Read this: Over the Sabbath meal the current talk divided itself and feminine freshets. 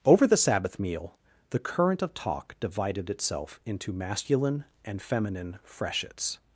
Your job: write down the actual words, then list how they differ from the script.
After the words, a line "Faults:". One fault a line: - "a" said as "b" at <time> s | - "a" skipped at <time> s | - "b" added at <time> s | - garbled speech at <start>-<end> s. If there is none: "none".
Over the Sabbath meal the current of talk divided itself into masculine and feminine freshets.
Faults:
- "of" added at 2.0 s
- "into masculine" added at 3.7 s